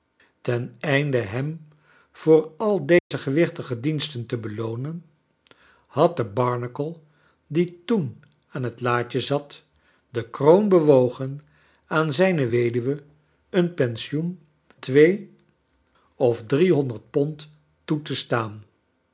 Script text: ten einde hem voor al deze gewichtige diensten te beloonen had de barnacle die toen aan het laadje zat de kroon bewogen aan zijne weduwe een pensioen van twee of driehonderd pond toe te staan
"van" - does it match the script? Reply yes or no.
no